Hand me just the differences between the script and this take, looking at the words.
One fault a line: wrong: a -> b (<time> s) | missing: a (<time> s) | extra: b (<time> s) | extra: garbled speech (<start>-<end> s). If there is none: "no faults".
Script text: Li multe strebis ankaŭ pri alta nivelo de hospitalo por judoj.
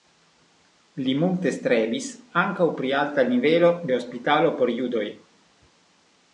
no faults